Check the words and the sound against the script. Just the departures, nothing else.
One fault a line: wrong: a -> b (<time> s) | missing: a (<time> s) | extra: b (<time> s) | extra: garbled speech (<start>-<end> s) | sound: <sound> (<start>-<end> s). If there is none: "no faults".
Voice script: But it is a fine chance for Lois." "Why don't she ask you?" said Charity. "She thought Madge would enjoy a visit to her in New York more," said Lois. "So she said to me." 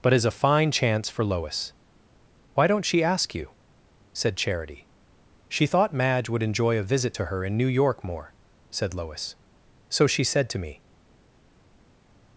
missing: it (0.1 s)